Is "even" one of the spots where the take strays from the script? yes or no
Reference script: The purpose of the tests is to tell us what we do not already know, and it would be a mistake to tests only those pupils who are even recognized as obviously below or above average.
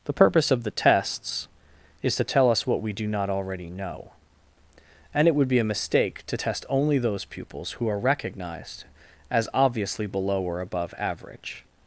yes